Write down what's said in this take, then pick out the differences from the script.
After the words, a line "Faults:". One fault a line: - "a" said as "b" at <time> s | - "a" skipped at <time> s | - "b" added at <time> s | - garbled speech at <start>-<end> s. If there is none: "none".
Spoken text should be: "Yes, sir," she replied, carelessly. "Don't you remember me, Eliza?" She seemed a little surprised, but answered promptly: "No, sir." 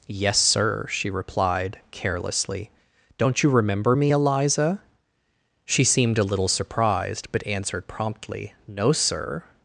"Yes, sir," she replied, carelessly. "Don't you remember me, Eliza?" She seemed a little surprised, but answered promptly: "No, sir."
Faults:
none